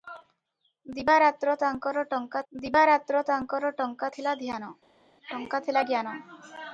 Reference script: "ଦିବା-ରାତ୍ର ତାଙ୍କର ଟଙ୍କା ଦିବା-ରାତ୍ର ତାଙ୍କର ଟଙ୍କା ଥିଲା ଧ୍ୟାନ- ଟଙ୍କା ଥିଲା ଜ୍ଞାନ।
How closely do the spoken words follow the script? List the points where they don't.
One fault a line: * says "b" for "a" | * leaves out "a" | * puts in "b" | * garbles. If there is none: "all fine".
all fine